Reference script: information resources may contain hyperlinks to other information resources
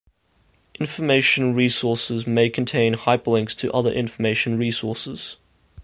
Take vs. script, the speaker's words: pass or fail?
pass